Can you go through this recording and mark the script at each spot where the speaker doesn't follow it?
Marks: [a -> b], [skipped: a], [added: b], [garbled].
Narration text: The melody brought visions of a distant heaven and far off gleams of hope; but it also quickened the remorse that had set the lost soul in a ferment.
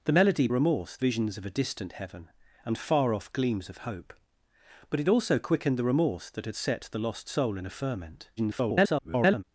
The melody [brought -> remorse] visions of a distant heaven and far off gleams of hope; but it also quickened the remorse that had set the lost soul in a ferment. [garbled]